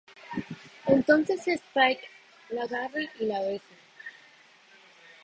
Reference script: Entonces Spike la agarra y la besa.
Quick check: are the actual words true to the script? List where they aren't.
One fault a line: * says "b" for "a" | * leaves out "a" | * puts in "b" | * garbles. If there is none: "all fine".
all fine